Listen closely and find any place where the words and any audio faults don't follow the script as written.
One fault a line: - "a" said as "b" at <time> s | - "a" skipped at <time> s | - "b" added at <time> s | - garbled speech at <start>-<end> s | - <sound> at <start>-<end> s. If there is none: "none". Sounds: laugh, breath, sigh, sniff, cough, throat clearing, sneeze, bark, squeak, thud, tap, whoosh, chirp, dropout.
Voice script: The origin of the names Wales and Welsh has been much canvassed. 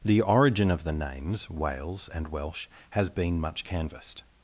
none